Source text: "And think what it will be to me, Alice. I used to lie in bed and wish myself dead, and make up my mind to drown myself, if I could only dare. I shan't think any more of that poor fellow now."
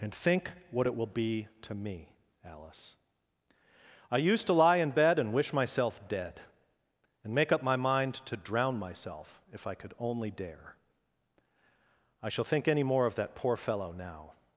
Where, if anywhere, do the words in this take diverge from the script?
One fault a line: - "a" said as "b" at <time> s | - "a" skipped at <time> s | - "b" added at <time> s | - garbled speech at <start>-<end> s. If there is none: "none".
- "shan't" said as "shall" at 12.3 s